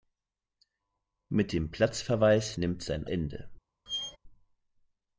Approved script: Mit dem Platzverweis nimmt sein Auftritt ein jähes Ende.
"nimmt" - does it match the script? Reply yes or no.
yes